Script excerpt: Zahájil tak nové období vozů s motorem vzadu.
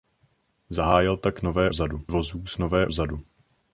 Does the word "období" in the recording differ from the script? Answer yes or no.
yes